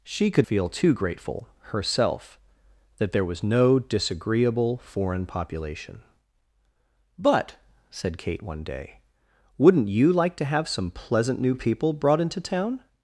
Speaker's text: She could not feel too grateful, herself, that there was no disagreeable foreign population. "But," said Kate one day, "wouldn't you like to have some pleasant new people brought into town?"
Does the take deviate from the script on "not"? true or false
true